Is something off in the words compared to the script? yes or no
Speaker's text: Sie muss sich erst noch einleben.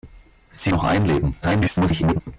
yes